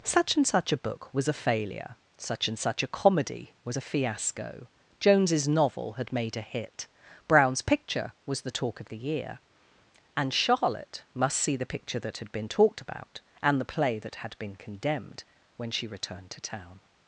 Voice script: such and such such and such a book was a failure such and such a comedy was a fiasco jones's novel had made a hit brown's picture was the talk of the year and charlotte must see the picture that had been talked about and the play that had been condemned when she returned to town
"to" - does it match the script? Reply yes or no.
yes